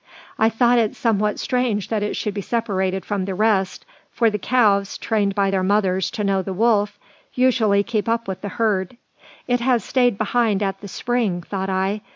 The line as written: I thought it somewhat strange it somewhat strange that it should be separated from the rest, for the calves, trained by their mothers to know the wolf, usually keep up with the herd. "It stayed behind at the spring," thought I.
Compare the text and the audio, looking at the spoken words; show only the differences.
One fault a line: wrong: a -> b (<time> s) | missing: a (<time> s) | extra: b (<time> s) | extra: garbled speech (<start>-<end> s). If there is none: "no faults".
missing: it somewhat strange (1.9 s)
extra: has (9.6 s)